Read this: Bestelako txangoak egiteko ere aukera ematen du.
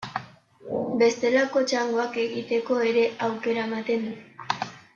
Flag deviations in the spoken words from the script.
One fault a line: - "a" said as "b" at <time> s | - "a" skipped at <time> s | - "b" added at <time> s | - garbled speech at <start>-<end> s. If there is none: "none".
none